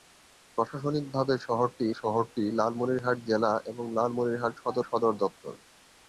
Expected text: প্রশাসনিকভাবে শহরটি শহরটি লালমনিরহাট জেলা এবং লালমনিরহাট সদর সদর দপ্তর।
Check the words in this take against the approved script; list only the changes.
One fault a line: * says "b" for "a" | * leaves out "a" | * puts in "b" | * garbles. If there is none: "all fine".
all fine